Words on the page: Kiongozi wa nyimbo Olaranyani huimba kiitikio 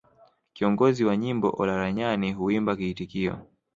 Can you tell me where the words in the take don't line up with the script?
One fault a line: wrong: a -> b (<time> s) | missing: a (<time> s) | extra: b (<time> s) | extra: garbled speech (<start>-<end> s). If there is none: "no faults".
no faults